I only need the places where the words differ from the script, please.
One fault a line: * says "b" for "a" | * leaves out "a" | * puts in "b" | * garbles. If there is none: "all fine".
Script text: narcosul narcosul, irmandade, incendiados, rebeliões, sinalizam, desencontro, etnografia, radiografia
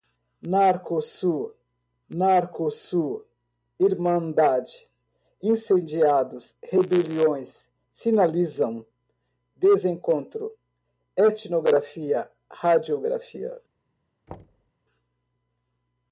all fine